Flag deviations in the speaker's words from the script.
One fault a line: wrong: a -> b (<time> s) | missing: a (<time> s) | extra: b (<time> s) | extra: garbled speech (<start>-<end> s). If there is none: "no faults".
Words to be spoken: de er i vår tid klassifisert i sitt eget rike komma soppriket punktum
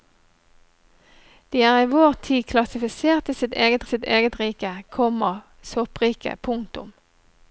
extra: sitt eget (3.9 s)